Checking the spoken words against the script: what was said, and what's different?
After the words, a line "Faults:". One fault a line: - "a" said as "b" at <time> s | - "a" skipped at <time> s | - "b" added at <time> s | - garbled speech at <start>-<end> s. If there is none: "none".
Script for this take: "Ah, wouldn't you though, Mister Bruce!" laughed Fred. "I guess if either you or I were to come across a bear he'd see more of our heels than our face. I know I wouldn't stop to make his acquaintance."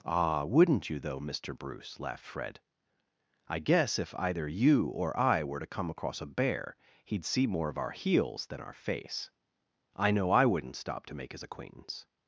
"Ah, wouldn't you though, Mister Bruce!" laughed Fred. "I guess if either you or I were to come across a bear he'd see more of our heels than our face. I know I wouldn't stop to make his acquaintance."
Faults:
none